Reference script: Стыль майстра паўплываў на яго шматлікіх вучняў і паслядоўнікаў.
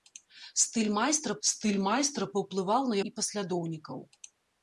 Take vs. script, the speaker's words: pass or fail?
fail